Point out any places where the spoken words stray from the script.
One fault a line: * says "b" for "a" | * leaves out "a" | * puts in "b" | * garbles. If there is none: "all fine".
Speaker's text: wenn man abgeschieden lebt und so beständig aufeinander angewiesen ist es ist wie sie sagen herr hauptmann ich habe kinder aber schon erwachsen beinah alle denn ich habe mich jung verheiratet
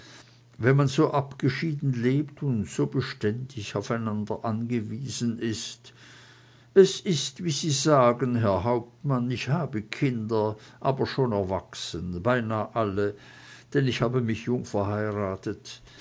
* puts in "so"